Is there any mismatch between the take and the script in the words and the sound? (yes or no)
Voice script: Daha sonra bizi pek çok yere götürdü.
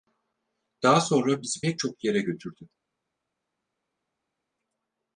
no